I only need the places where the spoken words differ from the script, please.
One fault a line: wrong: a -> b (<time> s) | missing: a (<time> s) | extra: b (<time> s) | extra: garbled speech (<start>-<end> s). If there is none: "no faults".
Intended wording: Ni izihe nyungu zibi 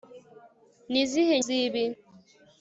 missing: nyungu (1.4 s)